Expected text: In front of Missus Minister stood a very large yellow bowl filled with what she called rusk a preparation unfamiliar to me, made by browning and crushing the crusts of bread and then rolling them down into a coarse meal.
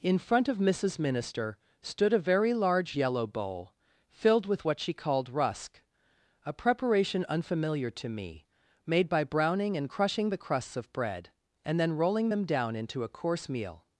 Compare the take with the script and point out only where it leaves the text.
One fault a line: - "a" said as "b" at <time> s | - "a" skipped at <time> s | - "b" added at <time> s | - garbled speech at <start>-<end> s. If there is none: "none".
none